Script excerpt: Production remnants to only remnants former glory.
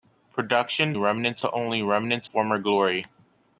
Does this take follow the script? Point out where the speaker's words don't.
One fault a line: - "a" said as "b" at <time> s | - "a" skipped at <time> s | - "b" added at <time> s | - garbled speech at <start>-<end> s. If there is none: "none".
none